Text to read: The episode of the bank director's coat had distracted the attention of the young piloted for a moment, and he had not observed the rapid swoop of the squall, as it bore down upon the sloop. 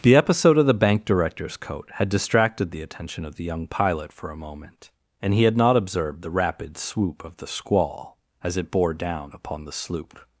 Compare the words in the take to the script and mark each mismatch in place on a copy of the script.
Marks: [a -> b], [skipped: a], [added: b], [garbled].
The episode of the bank director's coat had distracted the attention of the young [piloted -> pilot] for a moment, and he had not observed the rapid swoop of the squall, as it bore down upon the sloop.